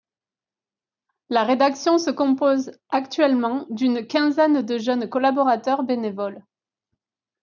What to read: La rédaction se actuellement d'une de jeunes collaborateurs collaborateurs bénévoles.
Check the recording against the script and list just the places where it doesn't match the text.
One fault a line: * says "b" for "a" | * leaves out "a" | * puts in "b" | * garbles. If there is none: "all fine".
* puts in "compose"
* puts in "quinzaine"
* leaves out "collaborateurs"